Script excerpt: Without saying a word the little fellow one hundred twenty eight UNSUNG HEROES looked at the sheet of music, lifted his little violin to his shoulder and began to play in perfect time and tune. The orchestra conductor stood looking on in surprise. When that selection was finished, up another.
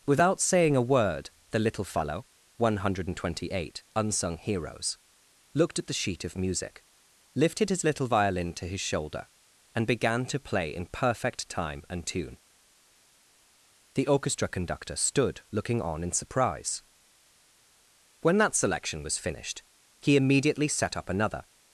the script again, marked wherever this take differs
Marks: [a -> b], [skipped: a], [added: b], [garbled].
Without saying a word the little fellow one hundred twenty eight UNSUNG HEROES looked at the sheet of music, lifted his little violin to his shoulder and began to play in perfect time and tune. The orchestra conductor stood looking on in surprise. When that selection was finished, [added: he immediately set] up another.